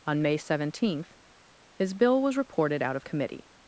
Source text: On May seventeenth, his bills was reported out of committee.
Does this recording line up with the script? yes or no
no